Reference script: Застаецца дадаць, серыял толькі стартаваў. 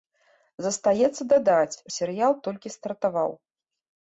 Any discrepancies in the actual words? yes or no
no